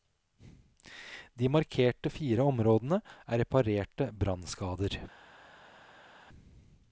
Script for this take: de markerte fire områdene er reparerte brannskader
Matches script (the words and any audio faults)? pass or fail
pass